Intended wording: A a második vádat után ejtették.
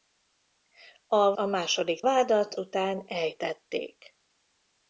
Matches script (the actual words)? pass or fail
pass